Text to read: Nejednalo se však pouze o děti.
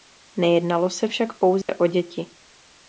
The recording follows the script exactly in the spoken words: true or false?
true